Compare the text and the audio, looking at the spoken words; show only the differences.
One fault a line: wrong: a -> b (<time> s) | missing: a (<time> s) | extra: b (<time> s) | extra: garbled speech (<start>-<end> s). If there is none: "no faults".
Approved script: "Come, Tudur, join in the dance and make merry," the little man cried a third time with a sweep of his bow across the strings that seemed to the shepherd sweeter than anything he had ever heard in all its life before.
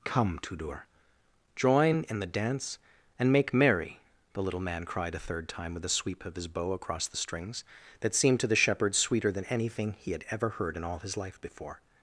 wrong: its -> his (11.0 s)